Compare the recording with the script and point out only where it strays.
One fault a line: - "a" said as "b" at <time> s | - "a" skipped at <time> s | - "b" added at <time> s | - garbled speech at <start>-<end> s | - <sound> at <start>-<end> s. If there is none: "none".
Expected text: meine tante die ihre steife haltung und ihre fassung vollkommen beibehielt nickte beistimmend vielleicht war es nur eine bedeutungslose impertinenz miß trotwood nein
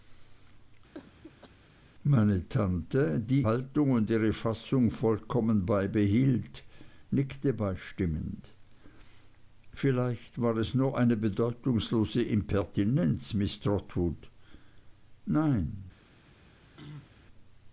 - cough at 0.9-1.5 s
- "ihre steife" skipped at 3.4 s
- throat clearing at 16.8-17.2 s